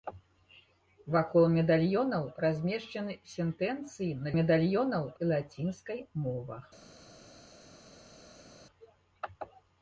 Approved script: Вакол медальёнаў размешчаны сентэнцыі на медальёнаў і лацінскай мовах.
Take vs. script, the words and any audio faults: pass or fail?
pass